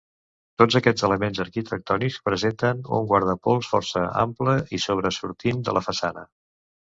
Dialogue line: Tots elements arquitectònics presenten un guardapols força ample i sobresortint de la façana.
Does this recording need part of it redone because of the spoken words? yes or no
yes